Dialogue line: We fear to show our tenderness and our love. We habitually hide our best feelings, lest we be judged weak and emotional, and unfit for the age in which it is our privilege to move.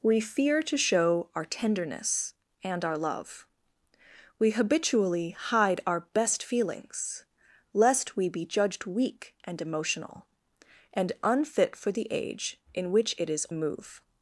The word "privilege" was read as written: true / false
false